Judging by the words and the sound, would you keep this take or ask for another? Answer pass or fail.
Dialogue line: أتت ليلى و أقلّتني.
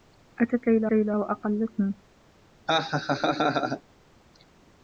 fail